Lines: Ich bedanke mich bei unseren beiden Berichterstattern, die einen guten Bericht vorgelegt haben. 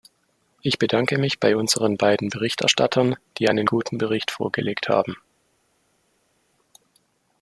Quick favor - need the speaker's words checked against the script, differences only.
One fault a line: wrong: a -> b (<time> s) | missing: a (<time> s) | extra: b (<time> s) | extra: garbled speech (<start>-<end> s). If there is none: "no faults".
no faults